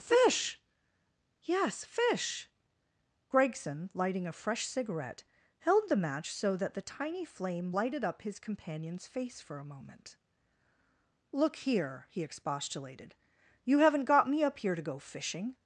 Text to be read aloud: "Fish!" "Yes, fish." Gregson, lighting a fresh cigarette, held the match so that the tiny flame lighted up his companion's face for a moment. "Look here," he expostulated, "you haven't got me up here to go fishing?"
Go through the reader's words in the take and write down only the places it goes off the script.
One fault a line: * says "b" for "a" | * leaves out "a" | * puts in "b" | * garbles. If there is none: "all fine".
all fine